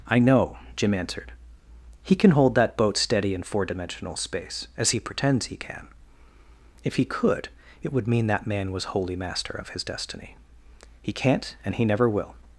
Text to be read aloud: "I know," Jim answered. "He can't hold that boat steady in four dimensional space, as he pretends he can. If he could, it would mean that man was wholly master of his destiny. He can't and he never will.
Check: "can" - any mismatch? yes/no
no